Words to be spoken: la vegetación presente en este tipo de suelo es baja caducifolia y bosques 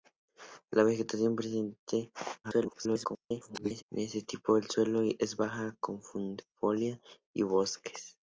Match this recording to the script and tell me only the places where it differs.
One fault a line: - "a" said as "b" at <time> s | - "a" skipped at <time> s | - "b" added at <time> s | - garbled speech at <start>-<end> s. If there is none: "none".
- garbled speech at 2.4-3.8 s